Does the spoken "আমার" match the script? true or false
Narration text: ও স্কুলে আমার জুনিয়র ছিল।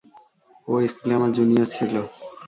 true